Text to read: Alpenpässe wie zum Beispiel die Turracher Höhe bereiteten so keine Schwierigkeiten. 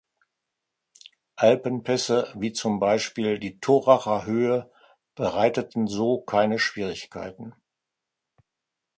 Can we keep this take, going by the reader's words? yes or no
yes